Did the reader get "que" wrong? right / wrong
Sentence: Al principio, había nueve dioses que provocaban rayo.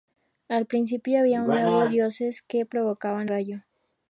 right